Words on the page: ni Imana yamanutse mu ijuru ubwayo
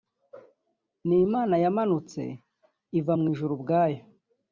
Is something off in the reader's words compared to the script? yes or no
yes